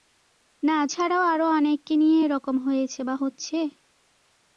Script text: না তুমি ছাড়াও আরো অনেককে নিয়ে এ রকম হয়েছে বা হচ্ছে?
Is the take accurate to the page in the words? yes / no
no